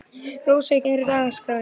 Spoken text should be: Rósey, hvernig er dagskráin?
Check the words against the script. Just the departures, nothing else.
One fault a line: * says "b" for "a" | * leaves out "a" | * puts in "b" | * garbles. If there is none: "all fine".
* leaves out "hvernig"